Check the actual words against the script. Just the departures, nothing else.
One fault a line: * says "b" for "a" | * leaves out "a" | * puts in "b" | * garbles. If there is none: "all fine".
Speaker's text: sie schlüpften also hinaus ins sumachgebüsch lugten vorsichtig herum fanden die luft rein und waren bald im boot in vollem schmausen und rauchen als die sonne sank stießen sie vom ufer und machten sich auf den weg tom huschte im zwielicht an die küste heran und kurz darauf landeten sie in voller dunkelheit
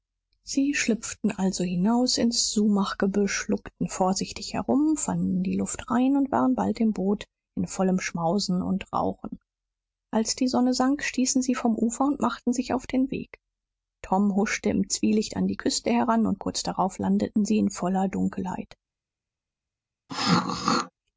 all fine